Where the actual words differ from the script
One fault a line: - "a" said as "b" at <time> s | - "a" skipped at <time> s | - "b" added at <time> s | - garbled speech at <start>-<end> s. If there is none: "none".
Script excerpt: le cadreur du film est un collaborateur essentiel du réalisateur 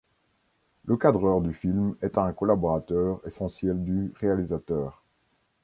none